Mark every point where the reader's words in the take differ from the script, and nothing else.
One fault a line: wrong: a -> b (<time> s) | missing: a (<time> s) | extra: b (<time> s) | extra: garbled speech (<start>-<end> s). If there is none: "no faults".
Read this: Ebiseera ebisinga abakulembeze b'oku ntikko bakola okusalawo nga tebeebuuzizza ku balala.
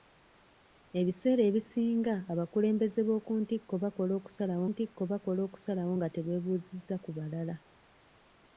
extra: ntikko bakola okusalawo (4.7 s)